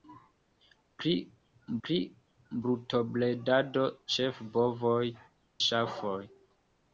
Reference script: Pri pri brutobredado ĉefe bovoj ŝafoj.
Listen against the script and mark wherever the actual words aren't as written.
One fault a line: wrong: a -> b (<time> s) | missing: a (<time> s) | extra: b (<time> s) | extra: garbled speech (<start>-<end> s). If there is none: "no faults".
no faults